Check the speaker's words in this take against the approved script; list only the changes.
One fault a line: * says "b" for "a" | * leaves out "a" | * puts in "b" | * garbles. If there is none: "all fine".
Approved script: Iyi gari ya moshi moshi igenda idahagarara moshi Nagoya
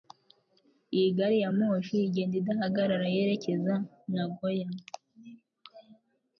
* leaves out "moshi"
* says "yerekeza" for "moshi"